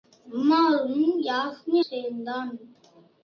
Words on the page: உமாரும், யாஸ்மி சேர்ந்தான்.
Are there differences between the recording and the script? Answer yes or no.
no